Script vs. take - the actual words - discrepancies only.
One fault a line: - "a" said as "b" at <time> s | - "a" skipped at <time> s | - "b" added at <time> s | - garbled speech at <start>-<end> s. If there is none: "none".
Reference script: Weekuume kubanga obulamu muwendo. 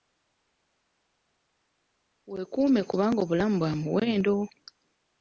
- "bwa" added at 3.6 s